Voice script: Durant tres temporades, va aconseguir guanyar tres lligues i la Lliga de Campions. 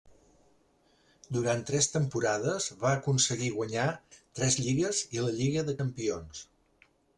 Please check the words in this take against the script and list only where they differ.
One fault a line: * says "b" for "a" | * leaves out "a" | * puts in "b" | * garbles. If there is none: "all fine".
all fine